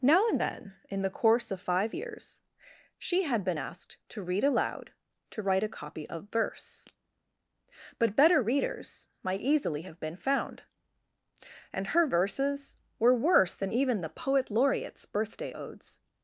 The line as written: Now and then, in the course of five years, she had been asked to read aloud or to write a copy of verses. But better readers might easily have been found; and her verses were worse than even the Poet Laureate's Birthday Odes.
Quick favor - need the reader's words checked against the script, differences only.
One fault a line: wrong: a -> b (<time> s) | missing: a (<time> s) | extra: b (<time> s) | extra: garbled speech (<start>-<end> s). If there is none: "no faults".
missing: or (4.9 s)
wrong: verses -> verse (6.3 s)